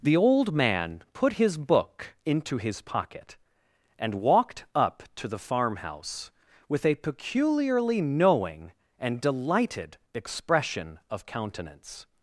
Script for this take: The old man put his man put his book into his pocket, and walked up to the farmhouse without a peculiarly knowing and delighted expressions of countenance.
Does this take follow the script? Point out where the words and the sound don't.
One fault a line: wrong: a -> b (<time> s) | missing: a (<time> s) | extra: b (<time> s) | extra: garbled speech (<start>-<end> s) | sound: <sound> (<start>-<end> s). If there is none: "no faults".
missing: man put his (1.6 s)
wrong: without -> with (6.7 s)
wrong: expressions -> expression (10.1 s)